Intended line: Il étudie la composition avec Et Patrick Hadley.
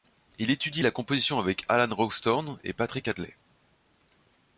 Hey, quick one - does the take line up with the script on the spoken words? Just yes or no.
no